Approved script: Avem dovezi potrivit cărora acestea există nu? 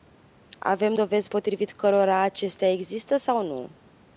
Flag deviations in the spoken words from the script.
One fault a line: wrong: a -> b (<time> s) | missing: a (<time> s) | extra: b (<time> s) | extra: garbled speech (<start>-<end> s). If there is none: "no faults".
extra: sau (3.2 s)